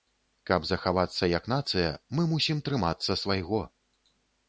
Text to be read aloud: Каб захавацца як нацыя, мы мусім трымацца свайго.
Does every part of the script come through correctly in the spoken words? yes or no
yes